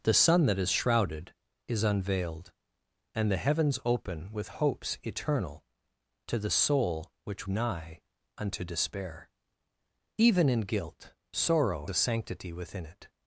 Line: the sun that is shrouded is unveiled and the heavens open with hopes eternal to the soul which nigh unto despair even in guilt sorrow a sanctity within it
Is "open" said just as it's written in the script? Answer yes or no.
yes